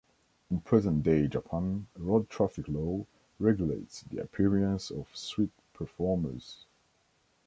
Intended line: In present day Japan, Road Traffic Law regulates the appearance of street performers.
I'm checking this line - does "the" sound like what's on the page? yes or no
yes